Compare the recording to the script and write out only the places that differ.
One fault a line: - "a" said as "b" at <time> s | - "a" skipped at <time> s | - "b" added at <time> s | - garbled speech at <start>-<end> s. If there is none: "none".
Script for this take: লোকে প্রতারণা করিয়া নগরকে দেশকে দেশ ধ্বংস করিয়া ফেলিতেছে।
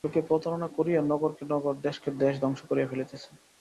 - "নগর" added at 1.5 s